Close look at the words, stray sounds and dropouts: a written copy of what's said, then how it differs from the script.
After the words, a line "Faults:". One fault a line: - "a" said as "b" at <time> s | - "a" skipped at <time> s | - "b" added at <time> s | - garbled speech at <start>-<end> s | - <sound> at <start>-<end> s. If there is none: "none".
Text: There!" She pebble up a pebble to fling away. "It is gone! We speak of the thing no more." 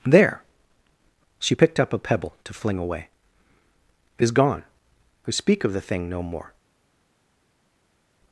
There!" She picked up a pebble to fling away. "It is gone! We speak of the thing no more."
Faults:
- "pebble" said as "picked" at 1.5 s